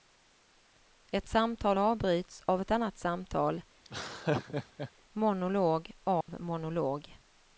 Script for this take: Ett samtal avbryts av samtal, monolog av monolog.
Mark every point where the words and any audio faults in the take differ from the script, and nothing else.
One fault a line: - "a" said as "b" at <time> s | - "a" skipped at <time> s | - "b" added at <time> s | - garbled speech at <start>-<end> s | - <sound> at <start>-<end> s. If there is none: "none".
- "ett annat" added at 2.6 s
- laugh at 3.8-4.9 s
- dropout at 6.2-6.3 s